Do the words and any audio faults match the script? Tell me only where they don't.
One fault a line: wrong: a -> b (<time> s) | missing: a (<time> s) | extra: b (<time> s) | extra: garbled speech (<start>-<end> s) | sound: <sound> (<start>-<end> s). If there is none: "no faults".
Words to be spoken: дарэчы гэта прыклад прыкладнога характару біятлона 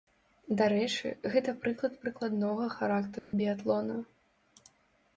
sound: dropout (3.2-3.3 s)